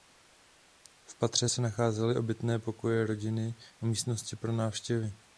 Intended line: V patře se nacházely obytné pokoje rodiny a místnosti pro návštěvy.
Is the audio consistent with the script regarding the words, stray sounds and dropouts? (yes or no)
yes